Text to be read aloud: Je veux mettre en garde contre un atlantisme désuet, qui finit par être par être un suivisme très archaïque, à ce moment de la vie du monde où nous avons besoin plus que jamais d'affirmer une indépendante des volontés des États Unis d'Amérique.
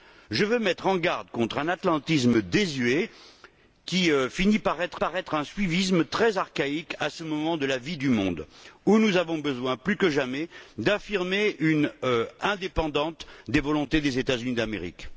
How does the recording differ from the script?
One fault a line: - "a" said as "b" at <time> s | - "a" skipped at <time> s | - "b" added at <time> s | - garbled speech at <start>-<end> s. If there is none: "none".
none